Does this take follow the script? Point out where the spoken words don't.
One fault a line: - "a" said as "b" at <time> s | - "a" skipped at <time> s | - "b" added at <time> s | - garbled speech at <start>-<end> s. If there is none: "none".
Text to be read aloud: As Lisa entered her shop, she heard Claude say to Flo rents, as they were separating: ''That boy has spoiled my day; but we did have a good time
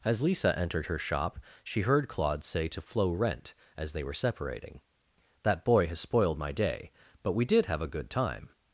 - "rents" said as "rent" at 3.1 s